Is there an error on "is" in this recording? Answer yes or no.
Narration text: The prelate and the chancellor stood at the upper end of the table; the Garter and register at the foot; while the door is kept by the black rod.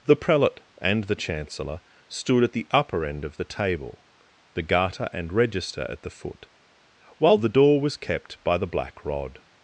yes